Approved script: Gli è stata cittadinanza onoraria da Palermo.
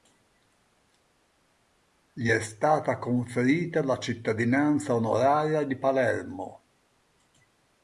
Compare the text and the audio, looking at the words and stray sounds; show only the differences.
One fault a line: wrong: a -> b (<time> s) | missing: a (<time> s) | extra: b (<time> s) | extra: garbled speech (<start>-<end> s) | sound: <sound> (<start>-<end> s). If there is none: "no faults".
extra: conferita la (3.0 s)
wrong: da -> di (5.6 s)